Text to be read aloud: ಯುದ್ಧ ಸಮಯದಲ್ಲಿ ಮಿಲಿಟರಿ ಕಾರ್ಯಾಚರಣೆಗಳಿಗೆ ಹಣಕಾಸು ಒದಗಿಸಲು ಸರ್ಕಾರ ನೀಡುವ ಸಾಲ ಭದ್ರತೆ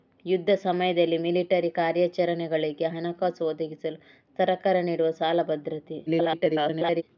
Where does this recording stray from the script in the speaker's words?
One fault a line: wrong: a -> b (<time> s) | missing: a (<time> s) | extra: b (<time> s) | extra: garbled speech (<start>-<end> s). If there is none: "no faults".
extra: garbled speech (6.1-7.0 s)